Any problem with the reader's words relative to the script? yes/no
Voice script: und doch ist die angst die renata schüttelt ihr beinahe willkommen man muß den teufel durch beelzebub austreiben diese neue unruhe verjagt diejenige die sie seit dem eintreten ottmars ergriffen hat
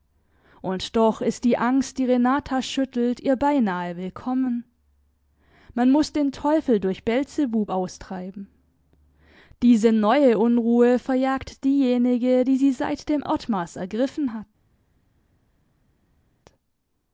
yes